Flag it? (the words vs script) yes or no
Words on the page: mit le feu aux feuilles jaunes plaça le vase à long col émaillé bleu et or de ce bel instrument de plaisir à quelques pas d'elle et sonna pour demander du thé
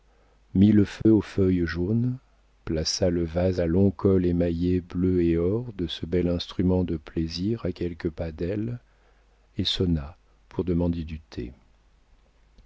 no